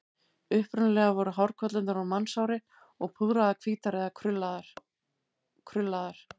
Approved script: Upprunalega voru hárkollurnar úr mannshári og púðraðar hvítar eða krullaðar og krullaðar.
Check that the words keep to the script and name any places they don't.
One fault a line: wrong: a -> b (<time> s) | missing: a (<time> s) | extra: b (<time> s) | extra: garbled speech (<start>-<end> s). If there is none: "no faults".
no faults